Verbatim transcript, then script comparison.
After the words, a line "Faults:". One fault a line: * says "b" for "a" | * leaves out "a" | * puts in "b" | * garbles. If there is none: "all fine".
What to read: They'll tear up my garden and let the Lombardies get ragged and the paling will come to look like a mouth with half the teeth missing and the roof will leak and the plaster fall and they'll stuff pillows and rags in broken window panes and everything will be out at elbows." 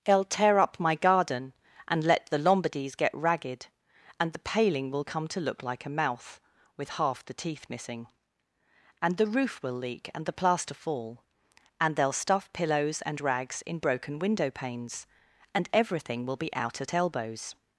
They'll tear up my garden and let the Lombardies get ragged and the paling will come to look like a mouth with half the teeth missing and the roof will leak and the plaster fall and they'll stuff pillows and rags in broken window panes and everything will be out at elbows."
Faults:
all fine